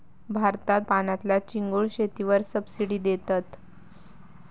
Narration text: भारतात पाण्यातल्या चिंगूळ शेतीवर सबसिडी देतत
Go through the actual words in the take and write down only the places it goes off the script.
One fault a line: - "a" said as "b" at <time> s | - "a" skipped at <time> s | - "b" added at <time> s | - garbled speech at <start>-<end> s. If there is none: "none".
none